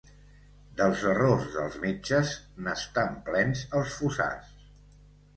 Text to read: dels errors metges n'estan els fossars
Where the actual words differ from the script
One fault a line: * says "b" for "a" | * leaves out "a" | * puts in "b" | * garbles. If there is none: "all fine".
* puts in "dels"
* puts in "plens"